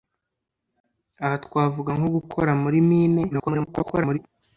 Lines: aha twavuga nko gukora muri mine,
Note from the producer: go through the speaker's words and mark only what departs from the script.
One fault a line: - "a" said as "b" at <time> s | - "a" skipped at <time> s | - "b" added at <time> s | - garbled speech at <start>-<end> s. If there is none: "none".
- garbled speech at 3.3-4.2 s